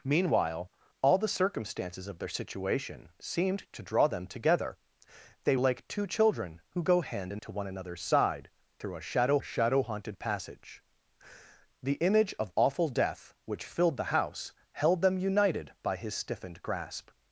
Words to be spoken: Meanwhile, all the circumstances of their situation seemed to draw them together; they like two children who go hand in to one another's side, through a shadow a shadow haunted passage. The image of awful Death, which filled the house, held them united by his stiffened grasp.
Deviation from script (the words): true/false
false